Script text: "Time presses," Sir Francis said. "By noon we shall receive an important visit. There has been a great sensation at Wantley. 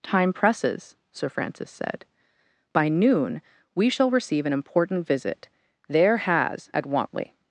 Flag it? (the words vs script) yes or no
yes